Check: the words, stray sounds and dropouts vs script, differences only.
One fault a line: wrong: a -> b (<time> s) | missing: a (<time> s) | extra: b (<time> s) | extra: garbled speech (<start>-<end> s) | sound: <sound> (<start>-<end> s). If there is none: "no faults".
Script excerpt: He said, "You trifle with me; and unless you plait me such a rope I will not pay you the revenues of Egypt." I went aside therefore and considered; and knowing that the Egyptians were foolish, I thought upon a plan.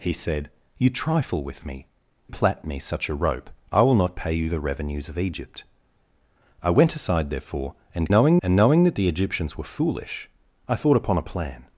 missing: and unless you (1.9 s)
wrong: considered -> knowing (8.1 s)